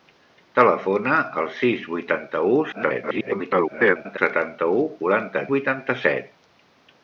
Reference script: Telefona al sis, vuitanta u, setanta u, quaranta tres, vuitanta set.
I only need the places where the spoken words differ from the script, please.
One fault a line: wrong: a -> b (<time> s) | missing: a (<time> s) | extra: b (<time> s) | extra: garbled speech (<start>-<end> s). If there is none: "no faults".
extra: garbled speech (2.7-4.2 s)
missing: tres (5.4 s)